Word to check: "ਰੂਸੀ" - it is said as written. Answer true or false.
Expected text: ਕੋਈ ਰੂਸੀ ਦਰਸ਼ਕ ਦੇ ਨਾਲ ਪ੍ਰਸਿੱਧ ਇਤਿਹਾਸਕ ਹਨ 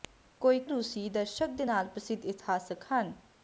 true